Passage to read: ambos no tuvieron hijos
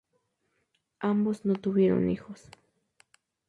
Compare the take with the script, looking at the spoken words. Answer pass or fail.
pass